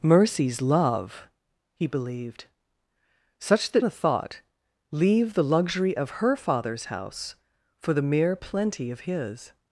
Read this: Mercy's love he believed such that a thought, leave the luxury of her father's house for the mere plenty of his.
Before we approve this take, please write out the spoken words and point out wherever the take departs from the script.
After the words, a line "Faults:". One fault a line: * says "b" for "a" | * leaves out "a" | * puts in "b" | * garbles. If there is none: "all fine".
Mercy's love he believed such that a thought, leave the luxury of her father's house for the mere plenty of his.
Faults:
all fine